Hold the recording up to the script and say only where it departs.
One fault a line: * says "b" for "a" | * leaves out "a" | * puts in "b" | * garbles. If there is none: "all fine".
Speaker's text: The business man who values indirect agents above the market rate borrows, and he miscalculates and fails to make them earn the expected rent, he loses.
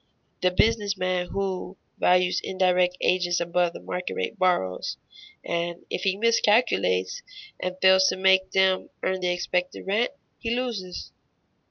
* puts in "if"